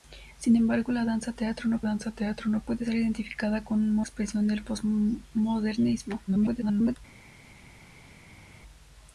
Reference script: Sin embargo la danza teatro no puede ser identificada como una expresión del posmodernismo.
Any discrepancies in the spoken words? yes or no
yes